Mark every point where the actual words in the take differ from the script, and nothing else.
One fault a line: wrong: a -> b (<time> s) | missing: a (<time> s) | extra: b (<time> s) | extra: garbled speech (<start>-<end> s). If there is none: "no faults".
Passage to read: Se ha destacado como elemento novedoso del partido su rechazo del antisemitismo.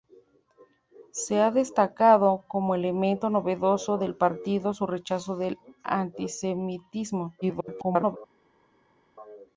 extra: garbled speech (7.4-8.2 s)